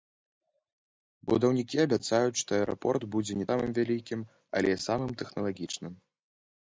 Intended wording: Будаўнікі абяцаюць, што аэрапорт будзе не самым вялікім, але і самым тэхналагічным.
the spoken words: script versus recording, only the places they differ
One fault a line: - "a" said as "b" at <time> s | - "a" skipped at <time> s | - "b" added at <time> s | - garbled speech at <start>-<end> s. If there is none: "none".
none